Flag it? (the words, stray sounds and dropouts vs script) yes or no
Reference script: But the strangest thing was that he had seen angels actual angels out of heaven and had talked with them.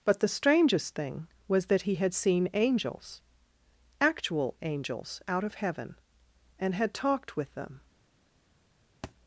yes